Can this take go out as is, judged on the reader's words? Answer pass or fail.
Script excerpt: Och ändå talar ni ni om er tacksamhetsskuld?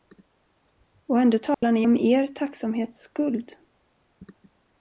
fail